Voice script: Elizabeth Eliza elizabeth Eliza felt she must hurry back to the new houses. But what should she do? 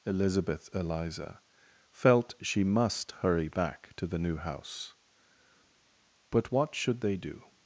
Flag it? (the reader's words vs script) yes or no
yes